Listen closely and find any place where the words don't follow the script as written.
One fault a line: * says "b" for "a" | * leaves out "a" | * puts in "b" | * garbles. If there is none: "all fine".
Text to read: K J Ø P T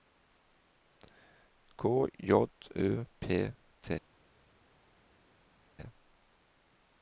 all fine